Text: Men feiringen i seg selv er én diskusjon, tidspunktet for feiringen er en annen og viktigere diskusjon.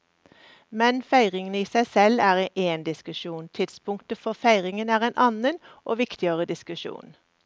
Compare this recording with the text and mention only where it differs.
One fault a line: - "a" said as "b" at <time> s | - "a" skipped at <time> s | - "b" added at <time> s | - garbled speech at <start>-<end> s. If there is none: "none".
none